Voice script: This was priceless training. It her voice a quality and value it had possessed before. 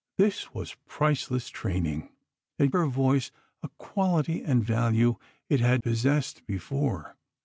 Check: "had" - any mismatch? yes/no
no